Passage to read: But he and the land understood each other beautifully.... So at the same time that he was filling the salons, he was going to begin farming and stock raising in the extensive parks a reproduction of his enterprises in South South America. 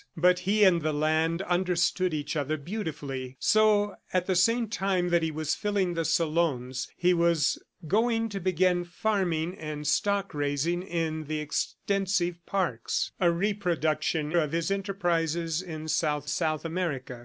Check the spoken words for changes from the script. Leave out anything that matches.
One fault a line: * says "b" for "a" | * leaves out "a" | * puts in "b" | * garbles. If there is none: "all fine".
all fine